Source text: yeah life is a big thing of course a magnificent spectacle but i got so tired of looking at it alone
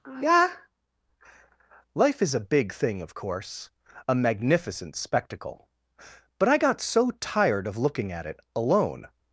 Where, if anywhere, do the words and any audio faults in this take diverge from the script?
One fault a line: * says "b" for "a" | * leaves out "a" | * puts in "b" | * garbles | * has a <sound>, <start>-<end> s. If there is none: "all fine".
all fine